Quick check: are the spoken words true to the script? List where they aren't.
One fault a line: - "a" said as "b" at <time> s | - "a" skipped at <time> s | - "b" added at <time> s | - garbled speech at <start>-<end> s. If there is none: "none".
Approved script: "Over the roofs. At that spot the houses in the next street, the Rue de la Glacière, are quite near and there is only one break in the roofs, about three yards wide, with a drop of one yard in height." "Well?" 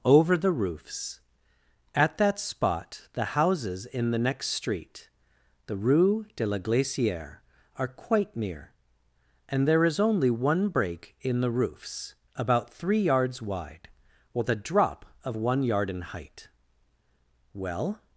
none